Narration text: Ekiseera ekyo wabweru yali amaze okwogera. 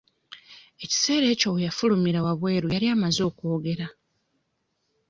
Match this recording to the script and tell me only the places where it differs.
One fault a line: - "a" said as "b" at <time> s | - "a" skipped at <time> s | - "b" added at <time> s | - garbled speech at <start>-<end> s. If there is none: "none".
- "we yafulumira" added at 1.5 s